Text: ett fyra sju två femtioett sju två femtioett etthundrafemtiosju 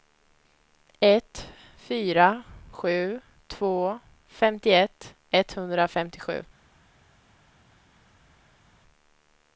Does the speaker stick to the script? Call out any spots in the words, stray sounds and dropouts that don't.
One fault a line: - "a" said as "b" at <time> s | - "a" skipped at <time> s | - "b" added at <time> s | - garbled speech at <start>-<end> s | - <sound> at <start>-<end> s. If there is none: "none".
- "sju två femtioett" skipped at 5.1 s